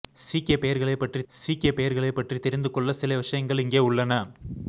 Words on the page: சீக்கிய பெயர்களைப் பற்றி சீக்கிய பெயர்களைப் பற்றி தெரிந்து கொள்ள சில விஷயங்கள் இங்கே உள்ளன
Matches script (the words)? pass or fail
pass